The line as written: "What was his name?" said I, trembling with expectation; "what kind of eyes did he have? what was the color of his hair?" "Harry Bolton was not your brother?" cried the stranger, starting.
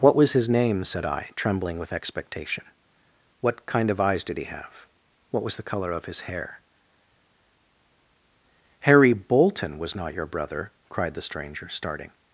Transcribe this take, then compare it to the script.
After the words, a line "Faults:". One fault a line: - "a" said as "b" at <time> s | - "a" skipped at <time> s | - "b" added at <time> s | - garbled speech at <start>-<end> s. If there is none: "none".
"What was his name?" said I, trembling with expectation; "what kind of eyes did he have? what was the color of his hair?" "Harry Bolton was not your brother?" cried the stranger, starting.
Faults:
none